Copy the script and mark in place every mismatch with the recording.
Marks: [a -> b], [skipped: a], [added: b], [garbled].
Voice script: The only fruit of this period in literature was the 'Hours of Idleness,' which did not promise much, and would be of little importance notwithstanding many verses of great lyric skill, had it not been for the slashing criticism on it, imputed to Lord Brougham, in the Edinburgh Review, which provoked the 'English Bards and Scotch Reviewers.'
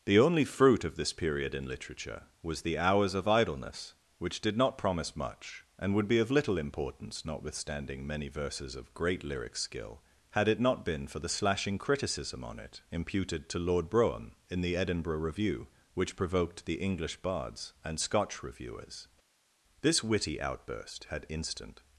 The only fruit of this period in literature was the 'Hours of Idleness,' which did not promise much, and would be of little importance notwithstanding many verses of great lyric skill, had it not been for the slashing criticism on it, imputed to Lord Brougham, in the Edinburgh Review, which provoked the 'English Bards and Scotch Reviewers.' [added: This witty outburst had instant]